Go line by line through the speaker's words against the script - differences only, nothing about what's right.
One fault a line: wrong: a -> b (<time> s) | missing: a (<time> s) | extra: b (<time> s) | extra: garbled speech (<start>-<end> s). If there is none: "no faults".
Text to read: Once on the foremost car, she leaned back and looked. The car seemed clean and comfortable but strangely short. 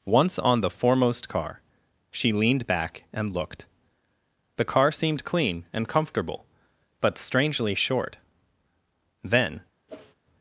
extra: Then (9.2 s)